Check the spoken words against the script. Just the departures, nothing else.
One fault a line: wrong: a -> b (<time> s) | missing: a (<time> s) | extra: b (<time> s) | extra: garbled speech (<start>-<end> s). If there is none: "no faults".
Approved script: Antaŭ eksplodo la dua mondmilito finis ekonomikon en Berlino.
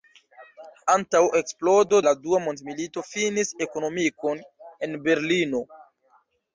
no faults